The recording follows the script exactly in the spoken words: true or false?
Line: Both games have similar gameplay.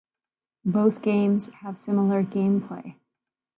true